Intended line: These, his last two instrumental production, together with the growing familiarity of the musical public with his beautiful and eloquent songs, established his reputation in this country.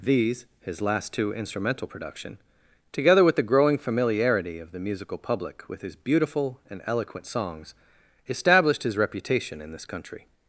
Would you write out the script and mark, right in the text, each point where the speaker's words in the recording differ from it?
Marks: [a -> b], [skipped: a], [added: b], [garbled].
These, his last two instrumental production, together with the growing familiarity of the musical public with his beautiful and eloquent songs, established his reputation in this country.